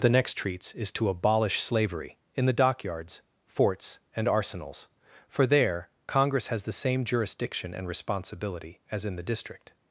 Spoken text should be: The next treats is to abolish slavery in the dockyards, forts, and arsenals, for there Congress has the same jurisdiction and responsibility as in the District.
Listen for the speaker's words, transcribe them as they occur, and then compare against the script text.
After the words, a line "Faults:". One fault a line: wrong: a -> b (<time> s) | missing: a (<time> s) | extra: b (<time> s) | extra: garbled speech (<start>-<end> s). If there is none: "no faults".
The next treats is to abolish slavery in the dockyards, forts, and arsenals, for there Congress has the same jurisdiction and responsibility as in the District.
Faults:
no faults